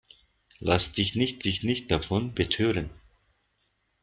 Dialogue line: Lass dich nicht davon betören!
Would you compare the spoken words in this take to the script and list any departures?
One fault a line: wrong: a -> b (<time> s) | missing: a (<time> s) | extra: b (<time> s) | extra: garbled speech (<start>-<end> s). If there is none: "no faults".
extra: dich nicht (1.4 s)